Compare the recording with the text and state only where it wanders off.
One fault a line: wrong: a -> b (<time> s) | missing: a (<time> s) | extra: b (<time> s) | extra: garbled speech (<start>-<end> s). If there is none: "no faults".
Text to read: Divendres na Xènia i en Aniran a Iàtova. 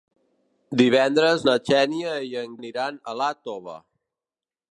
no faults